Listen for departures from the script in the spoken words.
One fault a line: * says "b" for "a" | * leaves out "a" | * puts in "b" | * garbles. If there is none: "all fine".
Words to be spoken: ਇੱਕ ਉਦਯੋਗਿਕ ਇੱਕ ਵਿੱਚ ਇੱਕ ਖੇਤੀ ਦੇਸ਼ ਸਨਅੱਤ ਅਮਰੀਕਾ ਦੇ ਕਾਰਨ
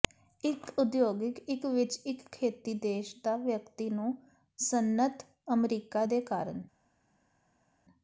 * puts in "ਦਾ ਵਿਅਕਤੀ ਨੂੰ"